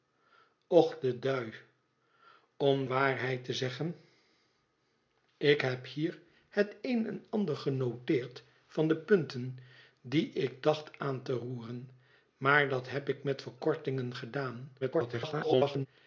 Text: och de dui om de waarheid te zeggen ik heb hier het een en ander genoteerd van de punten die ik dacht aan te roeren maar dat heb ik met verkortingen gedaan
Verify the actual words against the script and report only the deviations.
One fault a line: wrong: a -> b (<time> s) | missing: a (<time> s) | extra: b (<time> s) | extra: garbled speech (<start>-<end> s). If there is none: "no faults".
missing: de (2.8 s)
extra: garbled speech (14.8-15.9 s)